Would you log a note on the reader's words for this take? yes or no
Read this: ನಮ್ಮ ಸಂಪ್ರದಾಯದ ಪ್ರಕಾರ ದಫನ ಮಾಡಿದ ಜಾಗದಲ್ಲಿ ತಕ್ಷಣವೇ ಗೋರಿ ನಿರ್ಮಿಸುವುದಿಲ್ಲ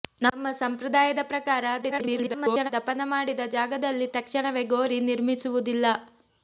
yes